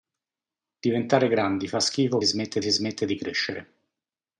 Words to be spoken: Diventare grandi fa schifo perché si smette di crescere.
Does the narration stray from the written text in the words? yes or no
yes